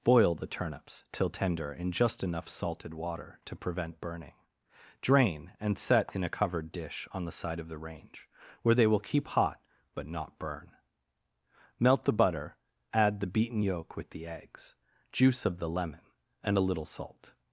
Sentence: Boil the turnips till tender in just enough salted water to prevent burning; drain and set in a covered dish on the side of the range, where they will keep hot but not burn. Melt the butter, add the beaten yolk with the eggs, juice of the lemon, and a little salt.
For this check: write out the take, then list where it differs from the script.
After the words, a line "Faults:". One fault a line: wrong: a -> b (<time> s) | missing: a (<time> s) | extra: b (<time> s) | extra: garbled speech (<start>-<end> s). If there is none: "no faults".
Boil the turnips till tender in just enough salted water to prevent burning; drain and set in a covered dish on the side of the range, where they will keep hot but not burn. Melt the butter, add the beaten yolk with the eggs, juice of the lemon, and a little salt.
Faults:
no faults